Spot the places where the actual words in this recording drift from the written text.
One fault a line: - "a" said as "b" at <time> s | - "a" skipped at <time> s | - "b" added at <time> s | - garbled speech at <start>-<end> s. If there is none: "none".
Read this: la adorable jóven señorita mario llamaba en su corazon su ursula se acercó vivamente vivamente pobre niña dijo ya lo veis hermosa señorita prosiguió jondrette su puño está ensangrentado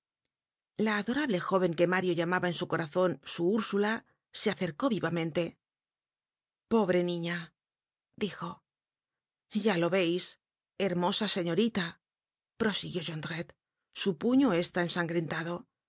- "señorita" said as "que" at 1.8 s
- "vivamente" skipped at 5.6 s